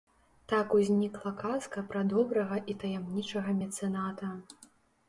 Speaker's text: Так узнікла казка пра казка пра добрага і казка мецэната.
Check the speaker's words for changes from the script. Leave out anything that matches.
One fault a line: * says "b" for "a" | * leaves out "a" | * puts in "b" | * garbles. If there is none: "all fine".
* leaves out "казка пра"
* says "таямнічага" for "казка"